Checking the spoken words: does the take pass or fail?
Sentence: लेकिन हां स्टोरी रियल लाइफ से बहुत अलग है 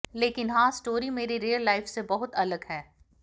fail